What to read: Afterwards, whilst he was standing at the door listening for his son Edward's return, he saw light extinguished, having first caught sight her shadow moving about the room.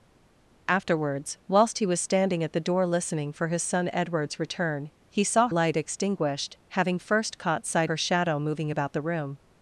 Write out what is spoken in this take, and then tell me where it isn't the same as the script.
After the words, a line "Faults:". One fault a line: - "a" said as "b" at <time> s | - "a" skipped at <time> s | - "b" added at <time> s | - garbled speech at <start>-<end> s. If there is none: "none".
Afterwards, whilst he was standing at the door listening for his son Edward's return, he saw light extinguished, having first caught sight her shadow moving about the room.
Faults:
none